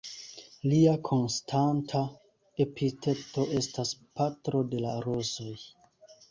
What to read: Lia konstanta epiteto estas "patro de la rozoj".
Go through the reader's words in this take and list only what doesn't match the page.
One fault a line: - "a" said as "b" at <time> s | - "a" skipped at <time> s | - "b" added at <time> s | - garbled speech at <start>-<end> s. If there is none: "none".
none